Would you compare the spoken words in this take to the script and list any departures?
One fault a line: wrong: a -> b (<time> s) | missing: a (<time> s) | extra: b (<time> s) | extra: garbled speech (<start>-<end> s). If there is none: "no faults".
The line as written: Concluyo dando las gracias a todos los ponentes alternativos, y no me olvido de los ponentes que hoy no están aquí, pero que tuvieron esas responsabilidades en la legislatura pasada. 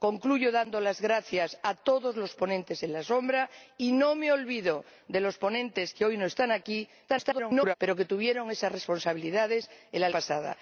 extra: garbled speech (7.1-7.7 s)
missing: legislatura (10.1 s)